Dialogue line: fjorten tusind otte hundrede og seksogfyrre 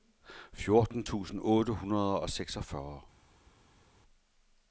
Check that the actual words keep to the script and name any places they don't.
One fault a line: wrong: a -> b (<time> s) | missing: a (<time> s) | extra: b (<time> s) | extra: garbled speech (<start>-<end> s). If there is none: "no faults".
no faults